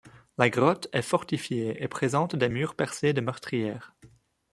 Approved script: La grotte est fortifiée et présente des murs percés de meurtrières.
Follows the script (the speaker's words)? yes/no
yes